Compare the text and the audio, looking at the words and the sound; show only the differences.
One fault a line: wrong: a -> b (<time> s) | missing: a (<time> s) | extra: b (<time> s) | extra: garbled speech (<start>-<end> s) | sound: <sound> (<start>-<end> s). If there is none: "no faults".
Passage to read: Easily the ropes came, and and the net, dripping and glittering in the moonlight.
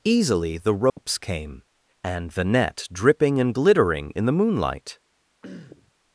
sound: dropout (0.9-1.0 s)
missing: and (2.3 s)
sound: throat clearing (5.4-5.9 s)